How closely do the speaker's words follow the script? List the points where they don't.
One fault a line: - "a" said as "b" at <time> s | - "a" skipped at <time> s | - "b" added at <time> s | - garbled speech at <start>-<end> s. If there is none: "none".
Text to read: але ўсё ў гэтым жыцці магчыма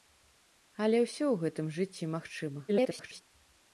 - garbled speech at 2.7-3.2 s